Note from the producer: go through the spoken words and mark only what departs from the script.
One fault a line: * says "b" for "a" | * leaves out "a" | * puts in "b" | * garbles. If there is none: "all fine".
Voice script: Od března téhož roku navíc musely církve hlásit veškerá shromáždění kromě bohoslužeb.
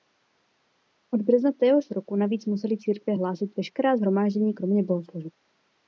all fine